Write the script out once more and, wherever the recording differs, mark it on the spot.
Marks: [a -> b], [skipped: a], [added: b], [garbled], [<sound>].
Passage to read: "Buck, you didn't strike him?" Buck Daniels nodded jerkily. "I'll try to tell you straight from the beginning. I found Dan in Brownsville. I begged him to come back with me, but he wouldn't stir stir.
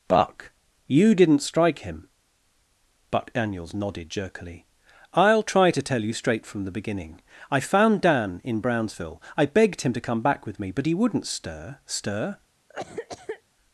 "Buck, you didn't strike him?" Buck Daniels nodded jerkily. "I'll try to tell you straight from the beginning. I found Dan in Brownsville. I begged him to come back with me, but he wouldn't stir stir. [cough]